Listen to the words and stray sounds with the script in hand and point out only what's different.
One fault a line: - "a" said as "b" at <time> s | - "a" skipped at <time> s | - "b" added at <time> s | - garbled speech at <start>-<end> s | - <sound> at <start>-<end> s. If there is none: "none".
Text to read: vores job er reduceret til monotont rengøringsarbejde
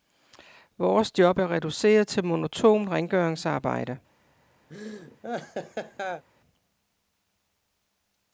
- laugh at 4.7-6.2 s